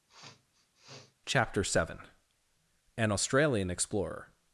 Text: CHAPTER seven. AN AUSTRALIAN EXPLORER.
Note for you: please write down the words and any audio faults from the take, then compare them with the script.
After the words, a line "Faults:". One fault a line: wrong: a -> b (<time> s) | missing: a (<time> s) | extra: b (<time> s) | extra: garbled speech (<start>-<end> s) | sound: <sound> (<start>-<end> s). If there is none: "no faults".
CHAPTER seven. AN AUSTRALIAN EXPLORER.
Faults:
sound: sniff (0.1-1.1 s)